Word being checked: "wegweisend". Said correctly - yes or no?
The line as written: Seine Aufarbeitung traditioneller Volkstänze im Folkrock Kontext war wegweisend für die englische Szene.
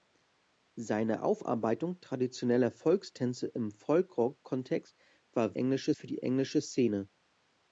no